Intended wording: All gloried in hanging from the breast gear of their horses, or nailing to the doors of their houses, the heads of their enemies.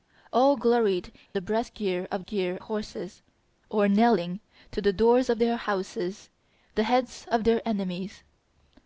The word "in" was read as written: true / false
false